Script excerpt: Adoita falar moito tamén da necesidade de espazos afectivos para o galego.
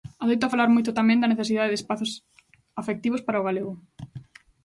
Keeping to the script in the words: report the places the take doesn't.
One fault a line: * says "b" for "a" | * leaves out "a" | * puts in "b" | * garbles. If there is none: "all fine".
all fine